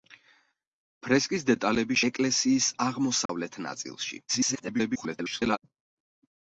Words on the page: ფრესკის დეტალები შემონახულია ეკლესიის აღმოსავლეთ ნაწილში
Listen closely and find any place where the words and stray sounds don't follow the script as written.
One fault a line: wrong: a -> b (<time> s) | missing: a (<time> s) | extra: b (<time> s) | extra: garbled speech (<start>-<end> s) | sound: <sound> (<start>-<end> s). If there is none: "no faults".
missing: შემონახულია (2.0 s)
sound: dropout (3.3-3.3 s)
extra: garbled speech (4.3-5.6 s)